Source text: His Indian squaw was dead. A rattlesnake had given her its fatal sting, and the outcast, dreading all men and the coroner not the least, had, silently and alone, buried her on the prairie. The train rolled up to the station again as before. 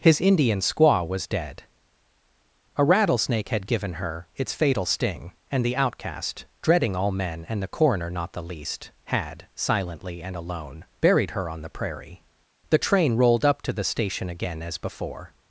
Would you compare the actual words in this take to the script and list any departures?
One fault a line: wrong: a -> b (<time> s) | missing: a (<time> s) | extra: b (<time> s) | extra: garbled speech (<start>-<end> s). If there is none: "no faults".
no faults